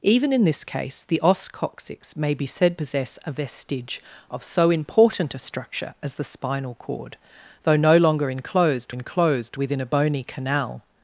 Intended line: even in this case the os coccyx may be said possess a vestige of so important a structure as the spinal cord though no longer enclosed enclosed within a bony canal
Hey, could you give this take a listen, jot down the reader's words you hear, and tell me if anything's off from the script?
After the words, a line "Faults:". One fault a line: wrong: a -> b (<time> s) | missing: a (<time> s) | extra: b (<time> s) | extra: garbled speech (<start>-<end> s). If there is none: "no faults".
even in this case the os coccyx may be said possess a vestige of so important a structure as the spinal cord though no longer enclosed enclosed within a bony canal
Faults:
no faults